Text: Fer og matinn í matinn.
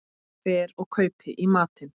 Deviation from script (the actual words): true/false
true